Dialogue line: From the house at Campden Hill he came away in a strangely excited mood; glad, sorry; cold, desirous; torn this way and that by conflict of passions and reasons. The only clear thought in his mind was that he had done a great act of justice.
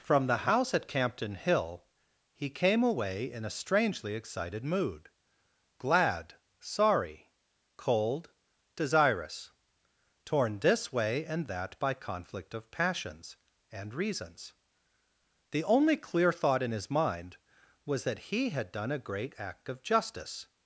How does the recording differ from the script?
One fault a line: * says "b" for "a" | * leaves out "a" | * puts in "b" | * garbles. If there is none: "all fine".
all fine